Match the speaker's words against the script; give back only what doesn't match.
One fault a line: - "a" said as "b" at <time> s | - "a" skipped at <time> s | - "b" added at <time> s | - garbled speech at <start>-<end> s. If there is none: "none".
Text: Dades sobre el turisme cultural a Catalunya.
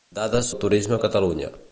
- "sobre" skipped at 0.5 s
- "cultural" skipped at 1.0 s